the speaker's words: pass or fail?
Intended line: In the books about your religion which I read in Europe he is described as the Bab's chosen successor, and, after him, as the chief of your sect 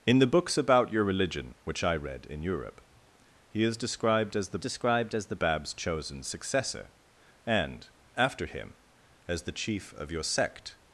fail